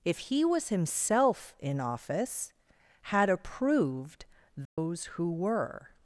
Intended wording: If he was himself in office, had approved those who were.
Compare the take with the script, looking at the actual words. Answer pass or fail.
pass